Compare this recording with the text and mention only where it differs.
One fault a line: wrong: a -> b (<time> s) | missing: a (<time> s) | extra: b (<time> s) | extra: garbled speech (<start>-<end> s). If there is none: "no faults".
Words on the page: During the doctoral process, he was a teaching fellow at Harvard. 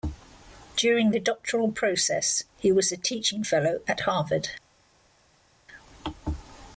no faults